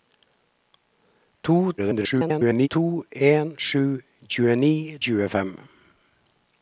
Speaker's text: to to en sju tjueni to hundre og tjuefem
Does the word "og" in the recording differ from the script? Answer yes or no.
yes